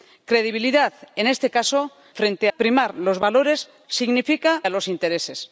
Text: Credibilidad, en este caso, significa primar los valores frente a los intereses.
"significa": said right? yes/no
no